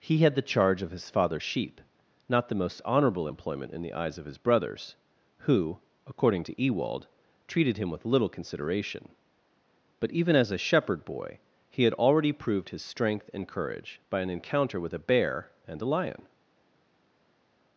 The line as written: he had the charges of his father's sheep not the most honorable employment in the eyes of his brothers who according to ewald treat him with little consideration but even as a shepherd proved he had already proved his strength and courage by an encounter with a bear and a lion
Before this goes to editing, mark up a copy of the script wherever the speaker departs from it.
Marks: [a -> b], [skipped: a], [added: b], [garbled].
he had the [charges -> charge] of his father's sheep not the most honorable employment in the eyes of his brothers who according to ewald [treat -> treated] him with little consideration but even as a shepherd [proved -> boy] he had already proved his strength and courage by an encounter with a bear and a lion